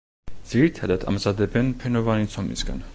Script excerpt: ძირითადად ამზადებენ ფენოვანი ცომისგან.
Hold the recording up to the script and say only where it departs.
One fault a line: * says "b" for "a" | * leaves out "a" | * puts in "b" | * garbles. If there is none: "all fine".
all fine